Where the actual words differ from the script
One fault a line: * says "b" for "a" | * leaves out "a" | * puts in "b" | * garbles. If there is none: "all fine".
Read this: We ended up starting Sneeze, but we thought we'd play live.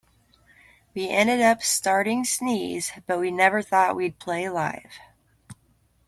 * puts in "never"